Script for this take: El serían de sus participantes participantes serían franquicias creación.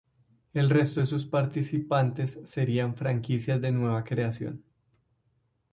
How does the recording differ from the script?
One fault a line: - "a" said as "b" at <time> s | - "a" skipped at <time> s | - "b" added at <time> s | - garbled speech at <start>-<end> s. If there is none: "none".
- "serían" said as "resto" at 0.7 s
- "participantes" skipped at 2.4 s
- "de nueva" added at 3.6 s